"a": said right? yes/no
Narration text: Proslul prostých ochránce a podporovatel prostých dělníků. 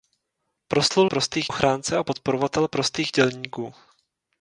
yes